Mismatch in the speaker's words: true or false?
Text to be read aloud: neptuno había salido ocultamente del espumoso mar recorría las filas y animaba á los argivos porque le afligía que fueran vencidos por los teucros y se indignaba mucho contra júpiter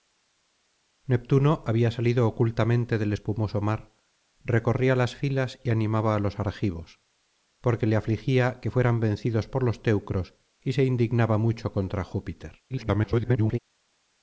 true